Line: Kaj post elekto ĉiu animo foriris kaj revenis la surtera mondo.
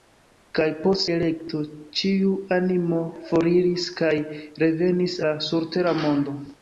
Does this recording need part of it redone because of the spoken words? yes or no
no